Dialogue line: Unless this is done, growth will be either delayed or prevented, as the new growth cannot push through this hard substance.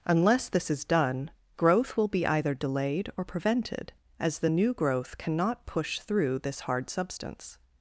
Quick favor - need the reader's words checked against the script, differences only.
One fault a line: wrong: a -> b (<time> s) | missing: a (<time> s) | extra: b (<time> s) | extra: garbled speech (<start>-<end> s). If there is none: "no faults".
no faults